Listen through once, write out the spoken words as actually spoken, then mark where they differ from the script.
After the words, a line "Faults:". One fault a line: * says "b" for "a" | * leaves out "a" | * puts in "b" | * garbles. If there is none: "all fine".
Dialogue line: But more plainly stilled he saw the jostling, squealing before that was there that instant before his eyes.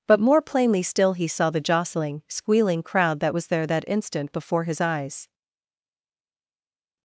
But more plainly still he saw the jostling, squealing crowd that was there that instant before his eyes.
Faults:
* says "still" for "stilled"
* says "crowd" for "before"